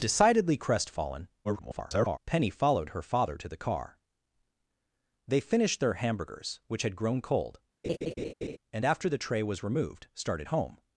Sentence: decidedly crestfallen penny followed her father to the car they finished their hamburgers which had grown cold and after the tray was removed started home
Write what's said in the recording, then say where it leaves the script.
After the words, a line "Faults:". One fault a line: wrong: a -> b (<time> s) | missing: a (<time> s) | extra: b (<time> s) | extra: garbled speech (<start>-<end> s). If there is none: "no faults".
decidedly crestfallen [garbled] penny followed her father to the car they finished their hamburgers which had grown cold and after the tray was removed started home
Faults:
extra: garbled speech (1.4-2.2 s)